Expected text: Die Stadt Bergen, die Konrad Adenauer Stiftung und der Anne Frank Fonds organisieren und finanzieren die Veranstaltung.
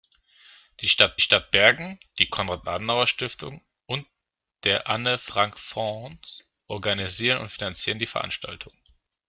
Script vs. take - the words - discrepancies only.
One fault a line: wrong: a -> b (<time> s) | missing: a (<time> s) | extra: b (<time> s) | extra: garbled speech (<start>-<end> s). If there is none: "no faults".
extra: Stadt (1.2 s)